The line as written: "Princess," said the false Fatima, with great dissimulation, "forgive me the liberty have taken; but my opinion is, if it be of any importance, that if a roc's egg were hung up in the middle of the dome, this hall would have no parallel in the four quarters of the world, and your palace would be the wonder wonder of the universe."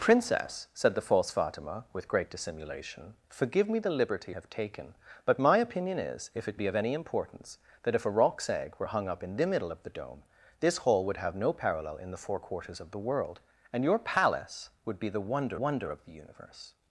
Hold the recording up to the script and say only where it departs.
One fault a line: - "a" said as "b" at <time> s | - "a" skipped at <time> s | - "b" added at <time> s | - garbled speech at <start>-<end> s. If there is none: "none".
none